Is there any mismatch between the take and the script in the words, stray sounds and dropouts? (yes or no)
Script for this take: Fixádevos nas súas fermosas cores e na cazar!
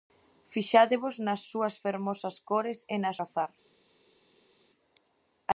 no